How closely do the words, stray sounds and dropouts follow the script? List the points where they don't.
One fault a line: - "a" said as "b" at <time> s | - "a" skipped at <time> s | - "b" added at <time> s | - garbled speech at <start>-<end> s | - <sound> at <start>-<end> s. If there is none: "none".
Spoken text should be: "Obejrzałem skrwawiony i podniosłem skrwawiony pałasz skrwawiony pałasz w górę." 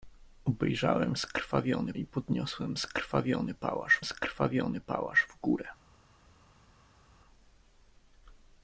none